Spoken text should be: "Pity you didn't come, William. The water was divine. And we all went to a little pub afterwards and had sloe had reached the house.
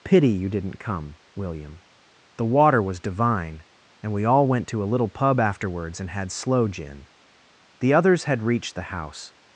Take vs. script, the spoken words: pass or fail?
fail